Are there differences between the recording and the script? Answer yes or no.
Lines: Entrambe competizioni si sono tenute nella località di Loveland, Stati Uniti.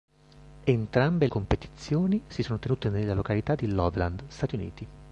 no